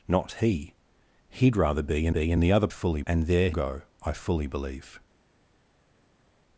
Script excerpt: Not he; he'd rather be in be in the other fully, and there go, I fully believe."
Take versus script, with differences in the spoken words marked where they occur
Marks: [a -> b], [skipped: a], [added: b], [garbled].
Not he; he'd rather be in be in the other fully, and there go, I fully believe."